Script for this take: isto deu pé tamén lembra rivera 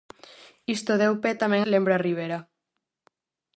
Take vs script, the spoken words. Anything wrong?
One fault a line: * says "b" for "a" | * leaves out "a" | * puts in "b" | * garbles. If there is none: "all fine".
all fine